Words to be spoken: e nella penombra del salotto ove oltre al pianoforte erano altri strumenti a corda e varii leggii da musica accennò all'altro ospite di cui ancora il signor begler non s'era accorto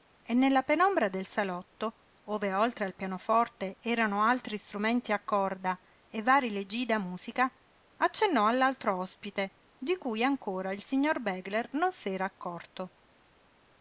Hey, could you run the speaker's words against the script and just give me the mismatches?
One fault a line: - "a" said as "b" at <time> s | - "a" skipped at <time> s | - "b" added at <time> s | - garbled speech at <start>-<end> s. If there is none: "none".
none